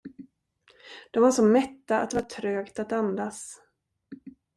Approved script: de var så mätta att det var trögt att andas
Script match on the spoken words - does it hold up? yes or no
yes